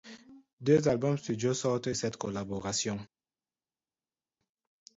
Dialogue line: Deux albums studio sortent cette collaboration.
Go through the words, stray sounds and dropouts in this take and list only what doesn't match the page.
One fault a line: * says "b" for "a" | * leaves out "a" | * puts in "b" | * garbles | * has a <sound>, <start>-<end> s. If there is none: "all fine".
all fine